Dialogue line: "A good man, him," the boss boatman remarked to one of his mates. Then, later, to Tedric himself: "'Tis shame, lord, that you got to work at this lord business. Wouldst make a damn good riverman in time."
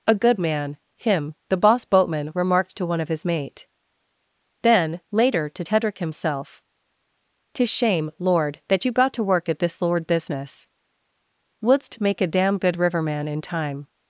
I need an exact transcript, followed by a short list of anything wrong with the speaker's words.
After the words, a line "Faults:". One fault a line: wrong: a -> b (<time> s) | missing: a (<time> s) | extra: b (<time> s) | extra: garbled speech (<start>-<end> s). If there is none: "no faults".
"A good man, him," the boss boatman remarked to one of his mate. Then, later, to Tedric himself: "'Tis shame, lord, that you got to work at this lord business. Wouldst make a damn good riverman in time."
Faults:
wrong: mates -> mate (3.3 s)